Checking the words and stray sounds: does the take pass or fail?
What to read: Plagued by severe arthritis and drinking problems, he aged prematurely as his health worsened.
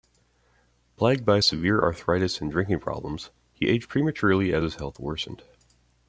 pass